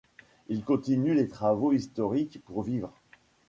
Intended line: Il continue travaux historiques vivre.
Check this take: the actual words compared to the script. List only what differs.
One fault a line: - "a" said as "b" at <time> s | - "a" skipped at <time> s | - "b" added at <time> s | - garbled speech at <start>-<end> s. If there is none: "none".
- "les" added at 1.1 s
- "pour" added at 2.4 s